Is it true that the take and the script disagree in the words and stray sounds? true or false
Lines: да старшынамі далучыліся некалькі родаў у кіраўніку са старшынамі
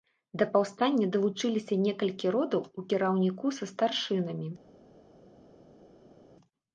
true